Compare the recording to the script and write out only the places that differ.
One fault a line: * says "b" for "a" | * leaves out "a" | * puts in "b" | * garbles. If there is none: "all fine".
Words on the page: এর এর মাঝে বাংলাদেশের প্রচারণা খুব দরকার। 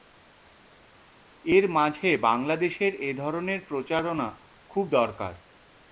* leaves out "এর"
* puts in "এ ধরনের"